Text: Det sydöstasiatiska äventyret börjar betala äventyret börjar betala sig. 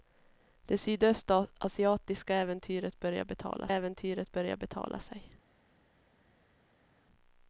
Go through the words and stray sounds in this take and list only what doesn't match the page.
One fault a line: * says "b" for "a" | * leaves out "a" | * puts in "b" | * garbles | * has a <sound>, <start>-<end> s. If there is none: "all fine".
all fine